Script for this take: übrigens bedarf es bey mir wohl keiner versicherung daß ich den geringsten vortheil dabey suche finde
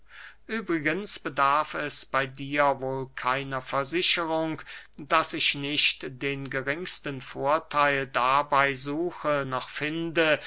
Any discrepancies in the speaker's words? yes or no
yes